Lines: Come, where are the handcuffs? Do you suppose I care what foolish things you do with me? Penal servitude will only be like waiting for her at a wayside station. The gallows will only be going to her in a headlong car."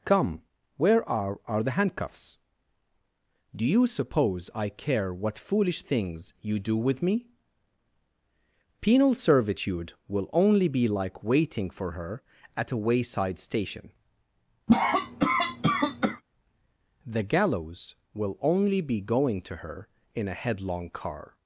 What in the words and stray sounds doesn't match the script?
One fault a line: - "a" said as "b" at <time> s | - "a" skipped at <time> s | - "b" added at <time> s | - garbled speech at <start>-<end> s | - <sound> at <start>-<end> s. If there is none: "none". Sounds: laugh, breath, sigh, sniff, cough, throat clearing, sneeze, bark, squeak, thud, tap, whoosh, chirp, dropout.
- "are" added at 1.4 s
- cough at 14.7-16.2 s